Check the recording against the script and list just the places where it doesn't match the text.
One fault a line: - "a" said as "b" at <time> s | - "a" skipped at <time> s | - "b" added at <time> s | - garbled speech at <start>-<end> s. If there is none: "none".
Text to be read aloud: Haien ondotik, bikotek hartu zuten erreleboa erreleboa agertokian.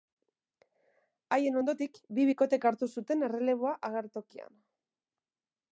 - "bi" added at 2.2 s
- "erreleboa" skipped at 3.7 s